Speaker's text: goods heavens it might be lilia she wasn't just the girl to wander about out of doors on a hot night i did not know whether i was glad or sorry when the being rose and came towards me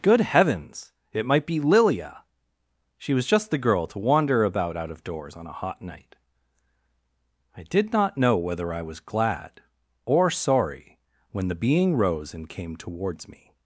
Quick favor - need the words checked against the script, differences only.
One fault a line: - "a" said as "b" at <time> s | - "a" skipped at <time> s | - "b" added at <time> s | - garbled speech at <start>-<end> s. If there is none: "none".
- "goods" said as "good" at 0.0 s
- "wasn't" said as "was" at 3.1 s